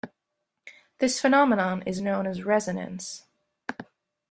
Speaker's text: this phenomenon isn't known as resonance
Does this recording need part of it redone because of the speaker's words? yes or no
yes